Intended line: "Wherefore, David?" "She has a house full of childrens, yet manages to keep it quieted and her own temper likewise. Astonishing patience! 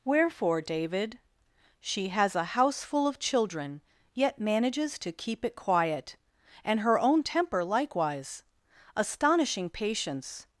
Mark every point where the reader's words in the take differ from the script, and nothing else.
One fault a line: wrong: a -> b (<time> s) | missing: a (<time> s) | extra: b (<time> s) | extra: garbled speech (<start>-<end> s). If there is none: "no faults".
wrong: childrens -> children (3.2 s)
wrong: quieted -> quiet (5.5 s)